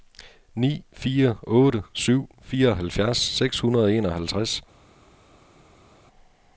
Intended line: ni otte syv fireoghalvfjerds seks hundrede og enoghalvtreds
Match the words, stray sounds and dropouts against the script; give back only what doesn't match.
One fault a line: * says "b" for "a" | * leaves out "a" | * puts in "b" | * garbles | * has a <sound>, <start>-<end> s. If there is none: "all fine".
* puts in "fire"